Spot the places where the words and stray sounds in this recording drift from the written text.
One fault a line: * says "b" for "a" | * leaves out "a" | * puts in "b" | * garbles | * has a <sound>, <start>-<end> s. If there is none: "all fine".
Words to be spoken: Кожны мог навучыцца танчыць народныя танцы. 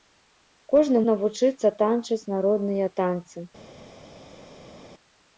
* leaves out "мог"